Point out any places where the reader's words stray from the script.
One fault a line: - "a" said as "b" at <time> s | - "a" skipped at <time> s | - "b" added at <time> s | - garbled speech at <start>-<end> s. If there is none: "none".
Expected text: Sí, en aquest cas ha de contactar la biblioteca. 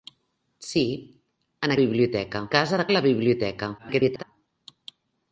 - "aquest" said as "biblioteca" at 1.8 s
- "contactar" skipped at 2.9 s
- garbled speech at 3.8-4.2 s